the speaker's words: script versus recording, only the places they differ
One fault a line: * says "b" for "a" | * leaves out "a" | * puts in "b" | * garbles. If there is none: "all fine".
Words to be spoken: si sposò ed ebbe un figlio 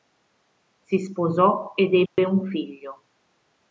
all fine